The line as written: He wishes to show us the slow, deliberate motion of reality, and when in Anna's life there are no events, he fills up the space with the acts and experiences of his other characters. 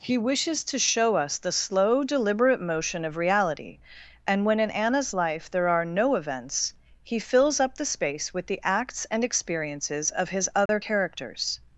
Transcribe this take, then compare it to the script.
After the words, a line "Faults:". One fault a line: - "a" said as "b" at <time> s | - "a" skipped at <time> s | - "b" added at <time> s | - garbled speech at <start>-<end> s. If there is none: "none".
He wishes to show us the slow, deliberate motion of reality, and when in Anna's life there are no events, he fills up the space with the acts and experiences of his other characters.
Faults:
none